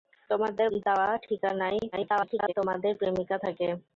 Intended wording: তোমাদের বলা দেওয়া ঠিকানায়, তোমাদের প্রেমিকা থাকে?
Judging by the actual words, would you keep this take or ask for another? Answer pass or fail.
fail